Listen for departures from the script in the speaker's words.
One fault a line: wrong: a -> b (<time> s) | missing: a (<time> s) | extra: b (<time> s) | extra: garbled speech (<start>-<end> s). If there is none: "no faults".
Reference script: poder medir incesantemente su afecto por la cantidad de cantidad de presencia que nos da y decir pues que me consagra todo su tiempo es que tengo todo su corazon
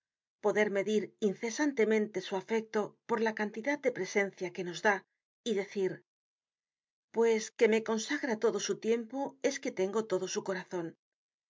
missing: cantidad de (3.9 s)